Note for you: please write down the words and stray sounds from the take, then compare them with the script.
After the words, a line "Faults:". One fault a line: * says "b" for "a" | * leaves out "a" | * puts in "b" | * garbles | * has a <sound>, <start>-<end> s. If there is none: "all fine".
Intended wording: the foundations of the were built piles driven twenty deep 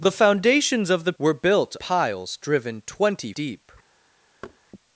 the foundations of the were built piles driven twenty deep
Faults:
* has a thud, 4.4-4.6 s